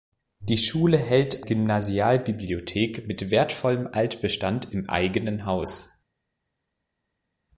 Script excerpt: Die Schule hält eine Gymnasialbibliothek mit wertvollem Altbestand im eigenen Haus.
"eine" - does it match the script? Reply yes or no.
no